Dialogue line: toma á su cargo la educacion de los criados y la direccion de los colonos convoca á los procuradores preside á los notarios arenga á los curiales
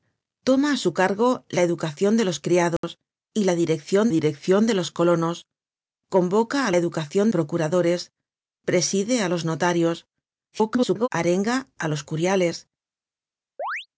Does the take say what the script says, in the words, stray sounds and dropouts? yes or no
no